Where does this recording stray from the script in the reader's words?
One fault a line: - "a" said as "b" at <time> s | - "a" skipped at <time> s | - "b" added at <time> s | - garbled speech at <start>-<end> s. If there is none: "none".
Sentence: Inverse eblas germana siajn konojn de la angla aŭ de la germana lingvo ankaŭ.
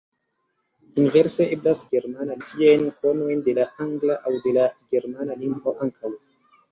none